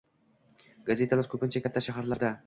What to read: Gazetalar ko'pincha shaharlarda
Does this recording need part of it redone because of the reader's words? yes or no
yes